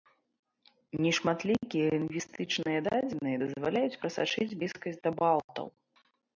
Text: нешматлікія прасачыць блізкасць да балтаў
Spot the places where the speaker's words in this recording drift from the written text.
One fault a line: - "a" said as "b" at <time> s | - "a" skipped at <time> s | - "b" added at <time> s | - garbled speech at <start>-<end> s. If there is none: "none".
- "лінгвістычныя дадзеныя дазваляюць" added at 1.9 s